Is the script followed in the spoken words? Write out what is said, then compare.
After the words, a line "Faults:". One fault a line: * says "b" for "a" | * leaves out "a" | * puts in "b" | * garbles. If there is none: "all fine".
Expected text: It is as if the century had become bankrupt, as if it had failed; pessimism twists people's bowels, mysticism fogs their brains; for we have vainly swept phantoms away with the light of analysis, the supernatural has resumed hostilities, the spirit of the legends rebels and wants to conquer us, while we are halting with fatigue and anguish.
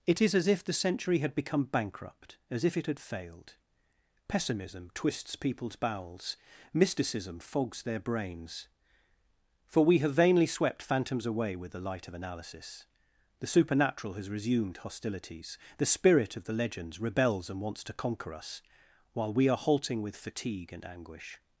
It is as if the century had become bankrupt, as if it had failed; pessimism twists people's bowels, mysticism fogs their brains; for we have vainly swept phantoms away with the light of analysis, the supernatural has resumed hostilities, the spirit of the legends rebels and wants to conquer us, while we are halting with fatigue and anguish.
Faults:
all fine